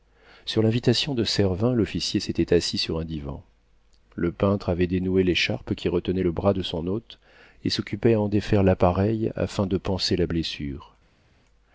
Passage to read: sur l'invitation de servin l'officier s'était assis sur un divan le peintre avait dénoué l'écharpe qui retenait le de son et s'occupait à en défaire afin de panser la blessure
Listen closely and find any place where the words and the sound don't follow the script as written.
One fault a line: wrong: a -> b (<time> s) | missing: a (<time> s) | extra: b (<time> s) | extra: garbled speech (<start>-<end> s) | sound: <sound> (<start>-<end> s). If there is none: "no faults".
extra: bras (6.3 s)
extra: hôte (6.9 s)
extra: l'appareil (8.6 s)